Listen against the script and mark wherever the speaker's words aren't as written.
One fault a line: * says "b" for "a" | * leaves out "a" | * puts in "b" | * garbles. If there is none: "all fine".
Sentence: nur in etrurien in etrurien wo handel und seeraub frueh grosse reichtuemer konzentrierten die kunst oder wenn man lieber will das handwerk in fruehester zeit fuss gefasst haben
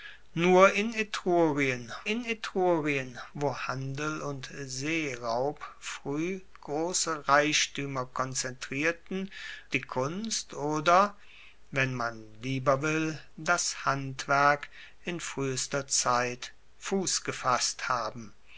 all fine